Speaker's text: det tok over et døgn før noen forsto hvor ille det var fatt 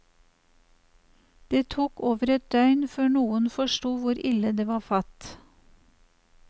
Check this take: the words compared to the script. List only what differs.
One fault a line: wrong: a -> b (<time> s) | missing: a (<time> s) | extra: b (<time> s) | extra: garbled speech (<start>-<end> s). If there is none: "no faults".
no faults